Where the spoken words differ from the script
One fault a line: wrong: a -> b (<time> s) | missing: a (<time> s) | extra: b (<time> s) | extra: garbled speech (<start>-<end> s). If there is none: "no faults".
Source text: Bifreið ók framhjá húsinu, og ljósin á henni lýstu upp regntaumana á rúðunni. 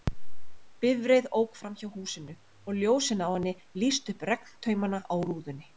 no faults